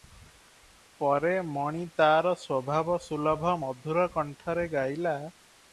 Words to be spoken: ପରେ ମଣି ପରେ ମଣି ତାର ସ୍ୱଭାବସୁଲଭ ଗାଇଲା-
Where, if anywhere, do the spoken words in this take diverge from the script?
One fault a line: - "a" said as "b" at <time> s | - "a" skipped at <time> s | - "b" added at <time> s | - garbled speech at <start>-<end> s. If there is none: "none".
- "ପରେ ମଣି ତାର ସ୍ୱଭାବସୁଲଭ" said as "ତାର ସ୍ୱଭାବସୁଲଭ ମଧୁର କଣ୍ଠରେ" at 1.9 s